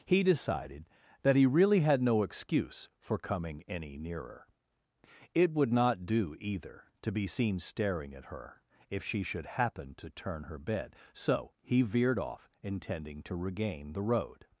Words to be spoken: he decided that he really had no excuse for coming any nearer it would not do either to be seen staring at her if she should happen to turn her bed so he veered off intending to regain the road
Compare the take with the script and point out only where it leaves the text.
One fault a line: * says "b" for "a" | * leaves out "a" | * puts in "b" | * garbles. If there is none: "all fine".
all fine